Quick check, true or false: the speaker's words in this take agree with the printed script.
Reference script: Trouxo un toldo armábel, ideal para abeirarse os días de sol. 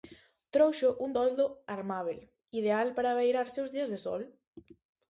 true